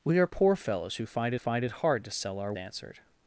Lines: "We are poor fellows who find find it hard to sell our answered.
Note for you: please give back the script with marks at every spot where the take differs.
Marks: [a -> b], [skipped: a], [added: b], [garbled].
"We are poor fellows who find find it hard to sell our answered.